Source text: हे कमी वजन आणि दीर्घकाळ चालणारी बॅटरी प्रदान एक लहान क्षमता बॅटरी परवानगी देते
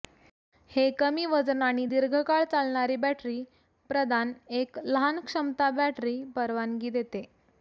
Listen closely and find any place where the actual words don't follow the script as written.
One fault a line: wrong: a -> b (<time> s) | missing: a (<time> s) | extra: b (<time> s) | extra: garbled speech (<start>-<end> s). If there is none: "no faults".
no faults